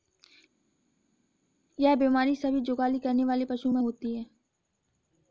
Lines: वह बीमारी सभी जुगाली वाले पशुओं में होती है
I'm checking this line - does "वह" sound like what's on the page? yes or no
no